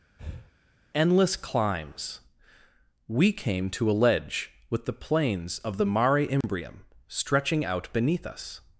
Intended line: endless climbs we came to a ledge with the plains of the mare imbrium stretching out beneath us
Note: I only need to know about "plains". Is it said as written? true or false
true